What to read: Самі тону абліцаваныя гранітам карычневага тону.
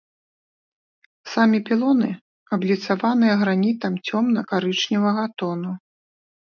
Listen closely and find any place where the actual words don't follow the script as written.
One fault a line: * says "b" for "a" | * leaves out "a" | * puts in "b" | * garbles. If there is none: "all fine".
* says "пілоны" for "тону"
* puts in "цёмна"